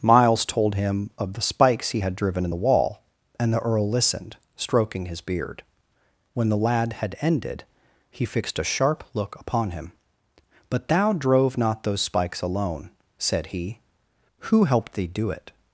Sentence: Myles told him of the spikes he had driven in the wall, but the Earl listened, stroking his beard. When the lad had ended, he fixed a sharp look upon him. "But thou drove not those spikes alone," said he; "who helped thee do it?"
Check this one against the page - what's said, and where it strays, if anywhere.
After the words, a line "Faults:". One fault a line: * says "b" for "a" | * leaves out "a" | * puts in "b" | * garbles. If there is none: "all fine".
Myles told him of the spikes he had driven in the wall, and the Earl listened, stroking his beard. When the lad had ended, he fixed a sharp look upon him. "But thou drove not those spikes alone," said he; "who helped thee do it?"
Faults:
* says "and" for "but"